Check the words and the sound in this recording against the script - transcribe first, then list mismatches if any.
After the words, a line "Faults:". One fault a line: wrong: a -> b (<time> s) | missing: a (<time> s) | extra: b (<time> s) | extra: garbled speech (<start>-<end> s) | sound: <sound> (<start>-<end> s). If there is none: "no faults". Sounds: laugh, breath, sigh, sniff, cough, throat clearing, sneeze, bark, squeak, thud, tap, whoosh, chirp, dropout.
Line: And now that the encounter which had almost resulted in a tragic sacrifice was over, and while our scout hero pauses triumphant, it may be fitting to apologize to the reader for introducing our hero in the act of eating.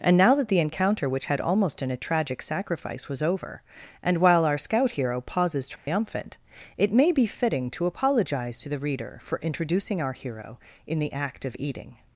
And now that the encounter which had almost in a tragic sacrifice was over, and while our scout hero pauses triumphant, it may be fitting to apologize to the reader for introducing our hero in the act of eating.
Faults:
missing: resulted (1.8 s)
sound: dropout (5.8-5.9 s)